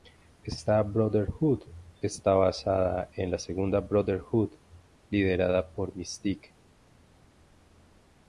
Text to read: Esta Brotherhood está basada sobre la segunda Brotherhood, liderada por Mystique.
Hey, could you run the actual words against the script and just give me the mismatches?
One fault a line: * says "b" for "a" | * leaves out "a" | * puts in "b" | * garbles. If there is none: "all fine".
* says "en" for "sobre"